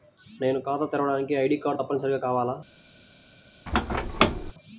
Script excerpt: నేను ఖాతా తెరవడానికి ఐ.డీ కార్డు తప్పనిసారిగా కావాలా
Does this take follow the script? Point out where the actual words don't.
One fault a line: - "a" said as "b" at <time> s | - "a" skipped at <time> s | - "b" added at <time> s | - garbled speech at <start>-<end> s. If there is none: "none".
none